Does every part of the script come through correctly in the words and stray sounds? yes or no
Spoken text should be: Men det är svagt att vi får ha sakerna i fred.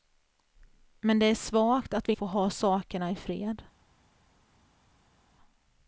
yes